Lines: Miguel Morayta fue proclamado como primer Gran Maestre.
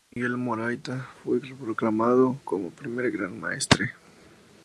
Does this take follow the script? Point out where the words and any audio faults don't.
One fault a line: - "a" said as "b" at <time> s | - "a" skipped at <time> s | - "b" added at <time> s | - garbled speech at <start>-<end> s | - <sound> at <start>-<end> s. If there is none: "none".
none